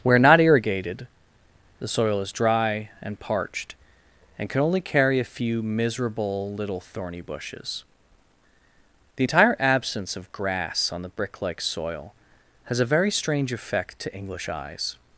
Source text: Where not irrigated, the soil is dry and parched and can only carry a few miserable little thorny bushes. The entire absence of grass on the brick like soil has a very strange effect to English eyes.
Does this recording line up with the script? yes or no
yes